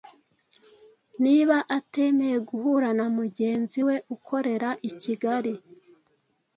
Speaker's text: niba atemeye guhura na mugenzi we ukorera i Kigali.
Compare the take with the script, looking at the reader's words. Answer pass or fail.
pass